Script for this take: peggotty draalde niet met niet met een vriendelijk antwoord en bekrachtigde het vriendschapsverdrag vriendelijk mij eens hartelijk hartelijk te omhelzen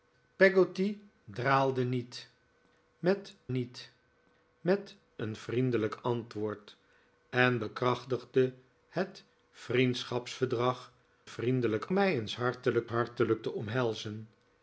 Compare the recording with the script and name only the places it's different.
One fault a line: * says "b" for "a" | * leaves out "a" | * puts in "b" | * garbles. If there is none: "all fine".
all fine